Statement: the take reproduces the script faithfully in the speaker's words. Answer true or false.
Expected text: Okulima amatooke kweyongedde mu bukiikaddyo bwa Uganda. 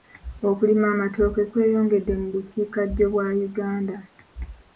true